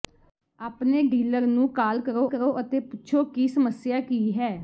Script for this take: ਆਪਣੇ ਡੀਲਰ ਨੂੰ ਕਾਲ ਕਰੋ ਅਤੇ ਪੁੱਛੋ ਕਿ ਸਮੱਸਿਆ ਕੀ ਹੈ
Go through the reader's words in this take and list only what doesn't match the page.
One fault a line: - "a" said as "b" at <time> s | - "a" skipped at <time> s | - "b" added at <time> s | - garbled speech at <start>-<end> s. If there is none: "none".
- "ਕਰੋ" added at 2.3 s